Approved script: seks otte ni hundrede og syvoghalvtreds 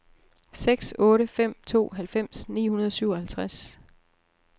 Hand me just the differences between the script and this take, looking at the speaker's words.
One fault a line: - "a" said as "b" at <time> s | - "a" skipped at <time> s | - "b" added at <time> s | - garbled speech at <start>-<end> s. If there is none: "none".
- "fem to halvfems" added at 1.3 s